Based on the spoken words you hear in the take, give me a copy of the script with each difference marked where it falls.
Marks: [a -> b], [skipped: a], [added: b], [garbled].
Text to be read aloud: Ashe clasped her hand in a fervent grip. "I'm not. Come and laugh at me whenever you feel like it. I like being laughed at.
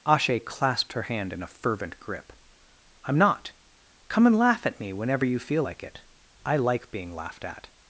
Ashe clasped her hand in a fervent grip. "I'm not. Come and laugh at me whenever you feel like it. I like being laughed at.